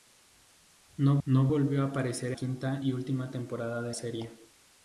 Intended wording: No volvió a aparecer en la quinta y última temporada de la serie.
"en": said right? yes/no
no